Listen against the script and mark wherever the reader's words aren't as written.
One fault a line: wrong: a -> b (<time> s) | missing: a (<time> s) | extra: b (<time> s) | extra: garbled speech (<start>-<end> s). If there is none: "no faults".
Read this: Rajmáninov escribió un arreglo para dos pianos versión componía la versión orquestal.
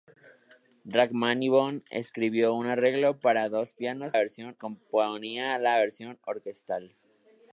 no faults